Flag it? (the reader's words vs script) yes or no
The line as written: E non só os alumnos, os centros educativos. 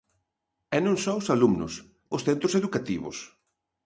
no